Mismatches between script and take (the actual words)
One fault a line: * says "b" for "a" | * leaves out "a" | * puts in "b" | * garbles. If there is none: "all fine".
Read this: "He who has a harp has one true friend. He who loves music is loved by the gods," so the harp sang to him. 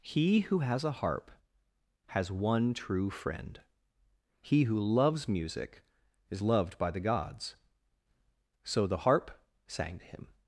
all fine